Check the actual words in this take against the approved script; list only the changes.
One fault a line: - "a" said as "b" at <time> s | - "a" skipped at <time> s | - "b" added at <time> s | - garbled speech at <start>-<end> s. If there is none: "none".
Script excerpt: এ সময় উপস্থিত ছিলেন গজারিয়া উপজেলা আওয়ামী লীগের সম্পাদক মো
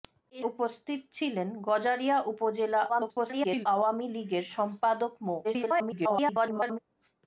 - "সময়" skipped at 0.4 s
- garbled speech at 2.9-3.7 s
- garbled speech at 5.4-6.8 s